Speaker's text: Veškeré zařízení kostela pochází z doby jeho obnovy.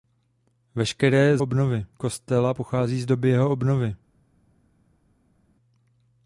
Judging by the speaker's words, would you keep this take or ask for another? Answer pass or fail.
fail